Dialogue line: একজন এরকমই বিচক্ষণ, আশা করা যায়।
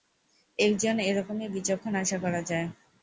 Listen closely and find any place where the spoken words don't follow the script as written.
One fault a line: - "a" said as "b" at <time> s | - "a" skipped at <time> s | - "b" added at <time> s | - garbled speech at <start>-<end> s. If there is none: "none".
none